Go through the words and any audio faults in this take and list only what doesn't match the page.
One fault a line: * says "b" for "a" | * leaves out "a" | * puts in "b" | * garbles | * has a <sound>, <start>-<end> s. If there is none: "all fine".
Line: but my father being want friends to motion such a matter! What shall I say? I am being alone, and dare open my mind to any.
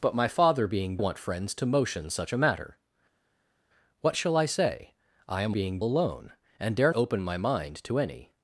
all fine